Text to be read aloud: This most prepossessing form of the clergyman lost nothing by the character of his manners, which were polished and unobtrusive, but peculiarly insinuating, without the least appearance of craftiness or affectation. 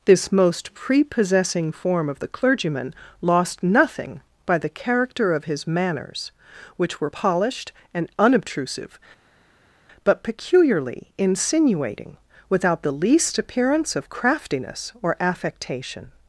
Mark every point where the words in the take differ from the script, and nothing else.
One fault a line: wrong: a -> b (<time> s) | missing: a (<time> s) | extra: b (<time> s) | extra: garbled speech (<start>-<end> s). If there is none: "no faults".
no faults